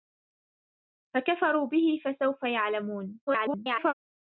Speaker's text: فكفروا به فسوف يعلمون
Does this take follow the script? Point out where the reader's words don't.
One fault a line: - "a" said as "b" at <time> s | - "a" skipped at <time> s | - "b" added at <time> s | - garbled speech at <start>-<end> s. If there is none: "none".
- garbled speech at 3.3-3.9 s